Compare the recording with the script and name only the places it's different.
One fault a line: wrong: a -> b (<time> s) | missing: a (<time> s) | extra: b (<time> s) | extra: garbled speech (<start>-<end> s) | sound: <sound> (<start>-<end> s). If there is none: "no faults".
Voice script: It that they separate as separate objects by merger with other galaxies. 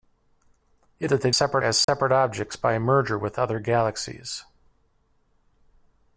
sound: dropout (1.8-1.9 s)